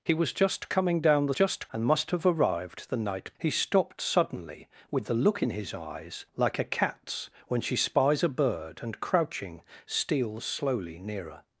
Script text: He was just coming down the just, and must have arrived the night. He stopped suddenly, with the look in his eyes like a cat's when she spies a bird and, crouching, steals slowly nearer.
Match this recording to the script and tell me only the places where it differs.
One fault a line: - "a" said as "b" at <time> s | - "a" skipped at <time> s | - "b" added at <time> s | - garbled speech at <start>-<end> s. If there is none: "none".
none